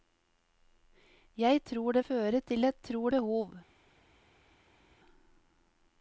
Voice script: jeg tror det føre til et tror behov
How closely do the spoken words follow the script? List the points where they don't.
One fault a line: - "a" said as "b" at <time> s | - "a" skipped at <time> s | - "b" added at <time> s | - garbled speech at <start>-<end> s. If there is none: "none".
none